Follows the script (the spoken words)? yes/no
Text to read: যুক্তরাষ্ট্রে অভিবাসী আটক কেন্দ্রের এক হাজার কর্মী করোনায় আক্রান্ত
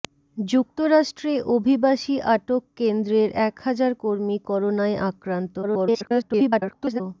no